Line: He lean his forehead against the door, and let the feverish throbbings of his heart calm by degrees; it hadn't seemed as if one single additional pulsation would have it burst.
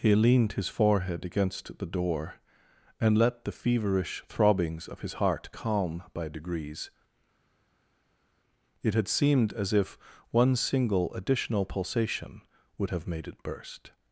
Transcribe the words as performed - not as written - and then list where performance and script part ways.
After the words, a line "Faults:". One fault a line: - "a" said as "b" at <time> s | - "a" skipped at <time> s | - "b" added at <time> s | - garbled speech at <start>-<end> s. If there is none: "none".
He leaned his forehead against the door, and let the feverish throbbings of his heart calm by degrees; it had seemed as if one single additional pulsation would have made it burst.
Faults:
- "lean" said as "leaned" at 0.1 s
- "hadn't" said as "had" at 8.9 s
- "made" added at 13.1 s